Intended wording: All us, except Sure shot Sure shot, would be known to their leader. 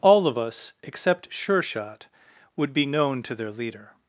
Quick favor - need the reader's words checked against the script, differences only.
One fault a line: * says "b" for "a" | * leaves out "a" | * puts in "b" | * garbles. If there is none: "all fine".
* puts in "of"
* leaves out "Sure shot"